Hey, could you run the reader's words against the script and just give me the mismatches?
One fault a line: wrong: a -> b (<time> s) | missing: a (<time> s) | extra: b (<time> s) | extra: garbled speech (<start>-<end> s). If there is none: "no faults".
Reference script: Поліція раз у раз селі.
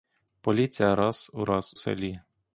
no faults